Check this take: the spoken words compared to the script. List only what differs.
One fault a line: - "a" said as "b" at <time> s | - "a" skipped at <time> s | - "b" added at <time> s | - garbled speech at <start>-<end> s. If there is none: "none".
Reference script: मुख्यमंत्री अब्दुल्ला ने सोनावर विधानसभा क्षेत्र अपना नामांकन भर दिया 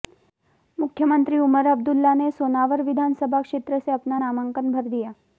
- "उमर" added at 1.4 s
- "से" added at 3.8 s